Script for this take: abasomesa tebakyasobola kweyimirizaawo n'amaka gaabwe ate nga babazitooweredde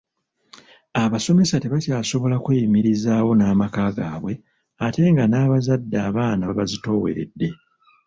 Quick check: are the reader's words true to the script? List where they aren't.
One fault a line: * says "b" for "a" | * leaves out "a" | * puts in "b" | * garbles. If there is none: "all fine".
* puts in "n'abazadde abaana"